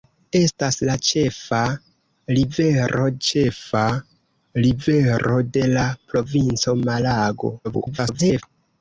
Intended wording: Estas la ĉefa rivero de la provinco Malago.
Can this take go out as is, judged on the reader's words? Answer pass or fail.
fail